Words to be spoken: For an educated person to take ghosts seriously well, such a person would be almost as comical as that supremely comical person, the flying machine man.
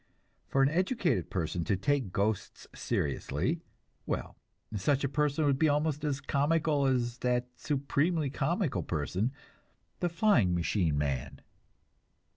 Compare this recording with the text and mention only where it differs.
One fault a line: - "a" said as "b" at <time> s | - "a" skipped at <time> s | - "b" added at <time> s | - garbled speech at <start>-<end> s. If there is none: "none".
none